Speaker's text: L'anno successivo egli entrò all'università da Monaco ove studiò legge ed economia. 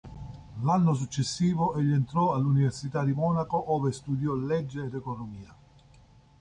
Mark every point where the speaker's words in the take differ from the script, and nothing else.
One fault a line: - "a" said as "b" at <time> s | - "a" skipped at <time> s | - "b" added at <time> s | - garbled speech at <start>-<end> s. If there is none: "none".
- "da" said as "di" at 3.0 s